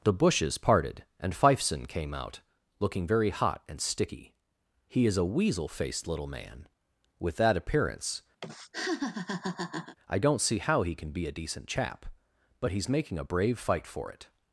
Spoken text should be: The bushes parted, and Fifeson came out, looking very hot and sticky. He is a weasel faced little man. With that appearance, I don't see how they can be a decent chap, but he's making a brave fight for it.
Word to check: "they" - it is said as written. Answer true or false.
false